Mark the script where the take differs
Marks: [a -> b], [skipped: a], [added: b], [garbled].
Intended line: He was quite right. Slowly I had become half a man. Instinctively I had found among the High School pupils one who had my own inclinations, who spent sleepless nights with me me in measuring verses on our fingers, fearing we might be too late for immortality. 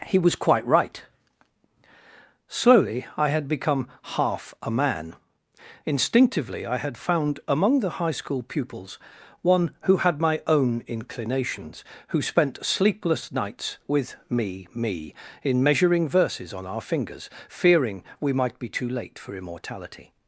He was quite right. Slowly I had become half a man. Instinctively I had found among the High School pupils one who had my own inclinations, who spent sleepless nights with me me in measuring verses on our fingers, fearing we might be too late for immortality.